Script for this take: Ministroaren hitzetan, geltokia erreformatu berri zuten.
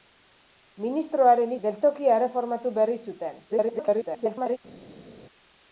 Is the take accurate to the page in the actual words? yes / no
no